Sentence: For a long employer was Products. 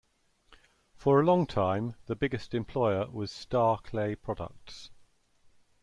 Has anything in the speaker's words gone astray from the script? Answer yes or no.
yes